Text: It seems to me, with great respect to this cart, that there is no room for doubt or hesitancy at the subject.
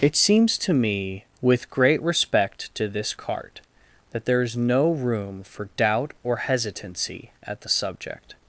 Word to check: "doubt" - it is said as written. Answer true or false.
true